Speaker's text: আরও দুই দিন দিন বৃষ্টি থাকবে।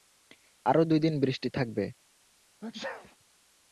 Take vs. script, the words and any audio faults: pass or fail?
fail